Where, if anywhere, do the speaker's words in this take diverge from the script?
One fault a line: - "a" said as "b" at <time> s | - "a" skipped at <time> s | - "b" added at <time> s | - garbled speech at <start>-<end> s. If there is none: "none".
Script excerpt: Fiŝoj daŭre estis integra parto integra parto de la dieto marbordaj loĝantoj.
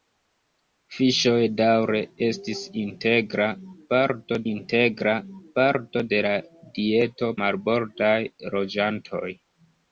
none